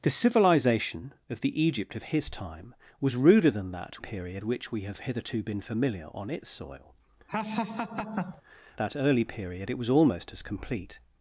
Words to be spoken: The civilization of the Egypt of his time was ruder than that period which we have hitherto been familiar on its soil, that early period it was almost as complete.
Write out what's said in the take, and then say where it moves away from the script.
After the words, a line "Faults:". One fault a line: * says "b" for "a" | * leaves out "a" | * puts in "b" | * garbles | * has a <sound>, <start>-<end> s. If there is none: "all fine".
The civilization of the Egypt of his time was ruder than that period which we have hitherto been familiar on its soil, that early period it was almost as complete.
Faults:
* has a laugh, 7.3-8.4 s